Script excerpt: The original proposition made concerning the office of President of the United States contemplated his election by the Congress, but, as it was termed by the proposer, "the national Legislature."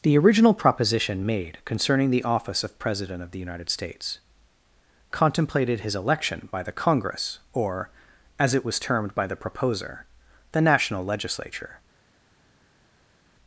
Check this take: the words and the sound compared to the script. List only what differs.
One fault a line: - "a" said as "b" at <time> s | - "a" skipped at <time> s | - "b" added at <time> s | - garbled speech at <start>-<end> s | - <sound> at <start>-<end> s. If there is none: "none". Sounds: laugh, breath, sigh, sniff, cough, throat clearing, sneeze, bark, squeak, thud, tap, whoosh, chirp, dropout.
- "but" said as "or" at 7.5 s